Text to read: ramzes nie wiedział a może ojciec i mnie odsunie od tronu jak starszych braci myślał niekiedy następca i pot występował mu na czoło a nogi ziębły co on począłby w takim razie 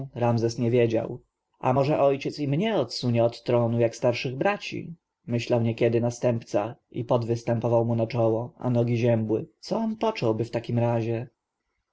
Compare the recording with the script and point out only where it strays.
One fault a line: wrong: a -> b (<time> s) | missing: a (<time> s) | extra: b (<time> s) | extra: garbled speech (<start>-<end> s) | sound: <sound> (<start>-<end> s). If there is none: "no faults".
no faults